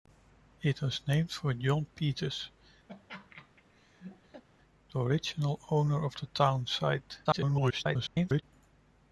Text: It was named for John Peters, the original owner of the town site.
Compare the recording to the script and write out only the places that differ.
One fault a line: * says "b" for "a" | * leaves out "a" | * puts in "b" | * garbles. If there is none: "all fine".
* garbles